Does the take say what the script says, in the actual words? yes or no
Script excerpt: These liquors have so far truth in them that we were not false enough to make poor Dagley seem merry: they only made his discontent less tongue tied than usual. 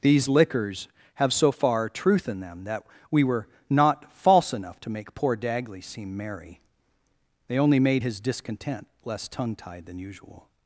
yes